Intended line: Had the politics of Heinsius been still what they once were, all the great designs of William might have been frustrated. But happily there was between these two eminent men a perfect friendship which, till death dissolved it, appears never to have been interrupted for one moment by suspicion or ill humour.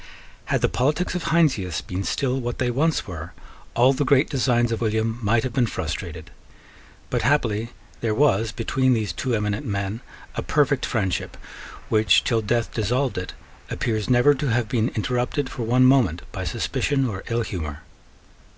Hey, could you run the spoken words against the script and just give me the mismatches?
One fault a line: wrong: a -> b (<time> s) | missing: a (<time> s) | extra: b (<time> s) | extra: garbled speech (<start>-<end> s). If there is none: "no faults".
no faults